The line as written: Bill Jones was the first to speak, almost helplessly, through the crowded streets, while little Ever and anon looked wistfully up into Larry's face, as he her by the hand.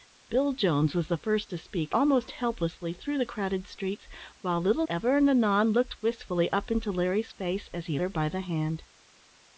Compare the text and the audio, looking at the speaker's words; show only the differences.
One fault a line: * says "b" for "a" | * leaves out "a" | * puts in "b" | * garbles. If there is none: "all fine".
all fine